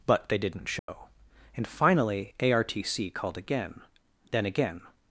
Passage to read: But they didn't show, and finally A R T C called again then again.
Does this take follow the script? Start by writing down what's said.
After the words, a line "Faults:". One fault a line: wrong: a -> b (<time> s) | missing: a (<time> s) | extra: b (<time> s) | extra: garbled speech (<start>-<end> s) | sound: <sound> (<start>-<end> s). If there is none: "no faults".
But they didn't show, and finally A R T C called again then again.
Faults:
sound: dropout (0.8-0.9 s)